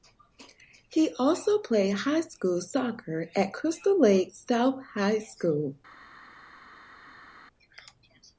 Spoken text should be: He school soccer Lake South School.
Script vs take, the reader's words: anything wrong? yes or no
yes